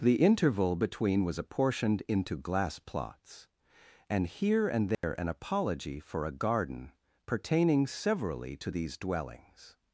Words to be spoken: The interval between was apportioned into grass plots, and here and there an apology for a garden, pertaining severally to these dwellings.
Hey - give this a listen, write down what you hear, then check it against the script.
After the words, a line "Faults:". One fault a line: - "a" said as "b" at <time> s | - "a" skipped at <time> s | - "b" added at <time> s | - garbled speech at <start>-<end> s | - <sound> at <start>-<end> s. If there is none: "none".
The interval between was apportioned into glass plots, and here and there an apology for a garden, pertaining severally to these dwellings.
Faults:
- "grass" said as "glass" at 2.4 s
- dropout at 4.9-5.0 s